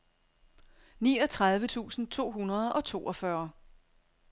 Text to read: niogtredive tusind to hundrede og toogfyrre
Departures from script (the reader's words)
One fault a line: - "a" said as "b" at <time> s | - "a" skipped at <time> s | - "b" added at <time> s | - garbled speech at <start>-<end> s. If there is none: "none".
none